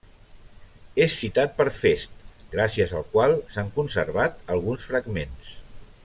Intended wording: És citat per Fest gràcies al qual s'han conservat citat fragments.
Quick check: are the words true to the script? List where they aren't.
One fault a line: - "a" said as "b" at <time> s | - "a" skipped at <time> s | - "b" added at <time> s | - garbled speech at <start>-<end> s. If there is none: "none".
- "citat" said as "alguns" at 4.6 s